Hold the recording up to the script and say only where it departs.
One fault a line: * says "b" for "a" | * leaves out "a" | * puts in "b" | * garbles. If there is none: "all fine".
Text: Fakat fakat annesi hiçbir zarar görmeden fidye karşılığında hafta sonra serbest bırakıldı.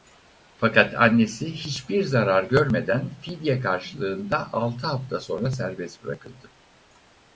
* leaves out "fakat"
* puts in "altı"